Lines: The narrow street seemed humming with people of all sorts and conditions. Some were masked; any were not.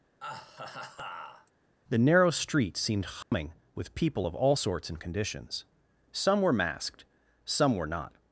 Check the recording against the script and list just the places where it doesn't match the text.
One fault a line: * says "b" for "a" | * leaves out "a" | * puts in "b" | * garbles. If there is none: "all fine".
* says "some" for "any"